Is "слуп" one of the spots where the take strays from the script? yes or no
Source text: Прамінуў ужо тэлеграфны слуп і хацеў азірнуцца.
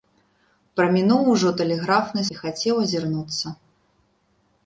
yes